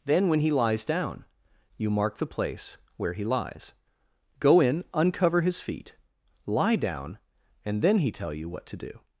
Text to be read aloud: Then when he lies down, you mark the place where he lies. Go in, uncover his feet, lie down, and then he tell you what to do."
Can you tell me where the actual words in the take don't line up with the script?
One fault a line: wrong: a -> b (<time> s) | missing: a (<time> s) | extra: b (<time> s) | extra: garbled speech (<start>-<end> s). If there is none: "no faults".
no faults